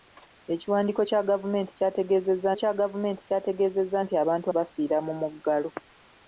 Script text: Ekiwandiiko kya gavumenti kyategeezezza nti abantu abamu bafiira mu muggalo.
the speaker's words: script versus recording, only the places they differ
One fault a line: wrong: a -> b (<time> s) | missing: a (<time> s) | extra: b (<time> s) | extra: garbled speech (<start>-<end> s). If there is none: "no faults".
extra: kya gavumenti kyategeezezza (2.6 s)
missing: abamu (4.5 s)